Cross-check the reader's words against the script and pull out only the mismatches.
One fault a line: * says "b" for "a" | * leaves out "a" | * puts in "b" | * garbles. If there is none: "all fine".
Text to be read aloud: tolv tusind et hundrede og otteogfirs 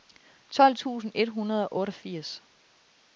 all fine